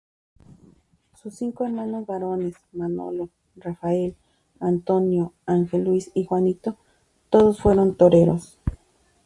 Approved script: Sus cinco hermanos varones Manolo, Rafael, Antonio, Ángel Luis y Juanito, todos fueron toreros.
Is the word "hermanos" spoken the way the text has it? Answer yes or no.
yes